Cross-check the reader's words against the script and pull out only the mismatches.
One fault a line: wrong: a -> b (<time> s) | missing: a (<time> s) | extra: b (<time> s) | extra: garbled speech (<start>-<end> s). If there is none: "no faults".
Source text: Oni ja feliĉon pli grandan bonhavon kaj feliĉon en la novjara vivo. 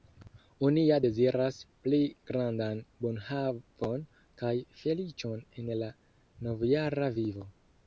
wrong: feliĉon -> deziras (1.0 s)